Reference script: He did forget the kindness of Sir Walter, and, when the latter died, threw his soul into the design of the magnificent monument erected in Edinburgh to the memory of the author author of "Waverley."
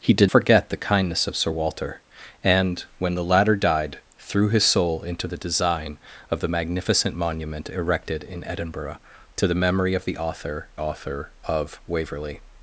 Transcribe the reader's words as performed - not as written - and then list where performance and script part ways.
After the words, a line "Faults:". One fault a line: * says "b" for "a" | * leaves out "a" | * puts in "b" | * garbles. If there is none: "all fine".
He did forget the kindness of Sir Walter, and, when the latter died, threw his soul into the design of the magnificent monument erected in Edinburgh to the memory of the author author of "Waverley."
Faults:
all fine